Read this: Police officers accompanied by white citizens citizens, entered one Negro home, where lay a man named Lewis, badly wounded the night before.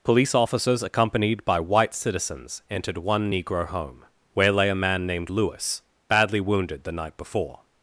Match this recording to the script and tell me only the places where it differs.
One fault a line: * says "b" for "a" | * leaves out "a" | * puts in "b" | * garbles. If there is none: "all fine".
* leaves out "citizens"